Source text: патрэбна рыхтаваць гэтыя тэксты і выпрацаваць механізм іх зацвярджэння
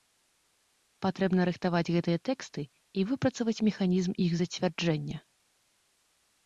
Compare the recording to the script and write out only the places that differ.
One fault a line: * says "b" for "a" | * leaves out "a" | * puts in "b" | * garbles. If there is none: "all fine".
all fine